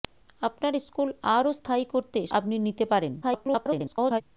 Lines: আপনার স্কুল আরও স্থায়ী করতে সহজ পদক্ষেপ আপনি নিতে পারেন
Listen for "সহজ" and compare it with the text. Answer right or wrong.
wrong